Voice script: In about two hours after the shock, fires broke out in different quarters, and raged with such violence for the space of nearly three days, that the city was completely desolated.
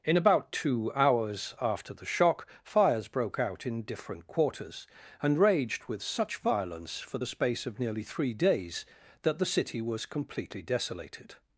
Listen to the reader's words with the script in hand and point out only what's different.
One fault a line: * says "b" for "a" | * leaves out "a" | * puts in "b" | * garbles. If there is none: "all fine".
all fine